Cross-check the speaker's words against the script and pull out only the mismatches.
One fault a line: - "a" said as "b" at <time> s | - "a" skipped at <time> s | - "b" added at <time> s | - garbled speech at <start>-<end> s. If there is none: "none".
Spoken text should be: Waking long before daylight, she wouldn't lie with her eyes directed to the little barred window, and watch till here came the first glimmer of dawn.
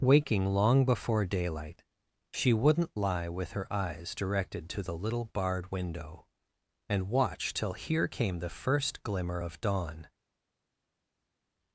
none